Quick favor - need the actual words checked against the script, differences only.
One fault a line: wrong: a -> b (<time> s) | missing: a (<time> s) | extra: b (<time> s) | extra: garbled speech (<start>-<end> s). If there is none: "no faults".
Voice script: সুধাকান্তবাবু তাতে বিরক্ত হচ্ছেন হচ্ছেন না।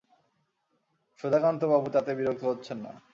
missing: হচ্ছেন (2.8 s)